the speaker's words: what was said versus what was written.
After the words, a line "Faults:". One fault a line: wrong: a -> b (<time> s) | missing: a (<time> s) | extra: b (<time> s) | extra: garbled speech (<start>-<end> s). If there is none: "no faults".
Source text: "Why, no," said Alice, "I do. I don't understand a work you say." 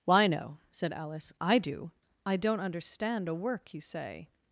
"Why, no," said Alice, "I do. I don't understand a work you say."
Faults:
no faults